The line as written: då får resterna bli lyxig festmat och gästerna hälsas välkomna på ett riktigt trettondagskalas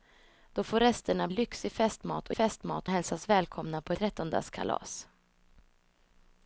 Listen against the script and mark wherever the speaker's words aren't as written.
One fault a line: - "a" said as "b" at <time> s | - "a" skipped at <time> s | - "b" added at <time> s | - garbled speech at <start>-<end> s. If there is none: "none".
- "bli" skipped at 1.3 s
- "gästerna" said as "festmat" at 2.3 s
- "ett riktigt" skipped at 3.9 s